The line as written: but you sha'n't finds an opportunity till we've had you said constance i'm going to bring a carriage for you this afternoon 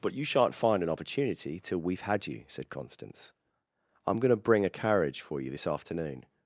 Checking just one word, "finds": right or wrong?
wrong